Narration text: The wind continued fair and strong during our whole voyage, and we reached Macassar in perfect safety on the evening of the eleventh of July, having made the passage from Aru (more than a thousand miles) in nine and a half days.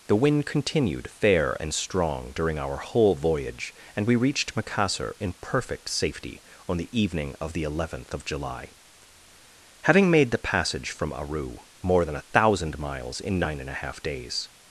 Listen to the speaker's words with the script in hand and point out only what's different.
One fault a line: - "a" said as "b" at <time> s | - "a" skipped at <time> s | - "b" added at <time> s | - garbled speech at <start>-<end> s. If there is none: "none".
none